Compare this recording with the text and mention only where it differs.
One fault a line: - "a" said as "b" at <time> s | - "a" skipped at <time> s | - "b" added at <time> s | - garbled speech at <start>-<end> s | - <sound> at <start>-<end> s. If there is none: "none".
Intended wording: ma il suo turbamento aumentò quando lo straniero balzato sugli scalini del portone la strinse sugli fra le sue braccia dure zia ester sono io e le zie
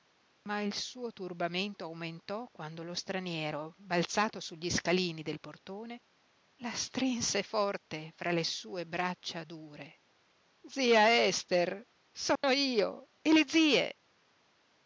- "sugli" said as "forte" at 7.4 s
- dropout at 12.4-12.4 s